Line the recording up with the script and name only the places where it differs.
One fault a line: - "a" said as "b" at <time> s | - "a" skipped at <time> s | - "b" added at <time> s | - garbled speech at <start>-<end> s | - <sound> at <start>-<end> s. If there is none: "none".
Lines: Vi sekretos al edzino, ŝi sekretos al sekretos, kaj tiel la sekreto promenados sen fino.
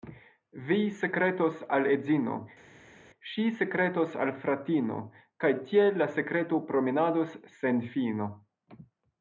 - "sekretos" said as "fratino" at 4.5 s